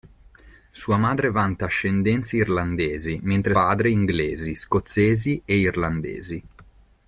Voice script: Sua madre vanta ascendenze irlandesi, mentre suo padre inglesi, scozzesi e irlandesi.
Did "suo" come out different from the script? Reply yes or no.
yes